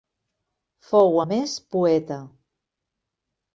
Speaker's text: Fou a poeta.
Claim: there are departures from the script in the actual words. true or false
true